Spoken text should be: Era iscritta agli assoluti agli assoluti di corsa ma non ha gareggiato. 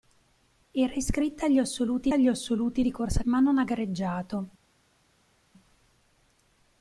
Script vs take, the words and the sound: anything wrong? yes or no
no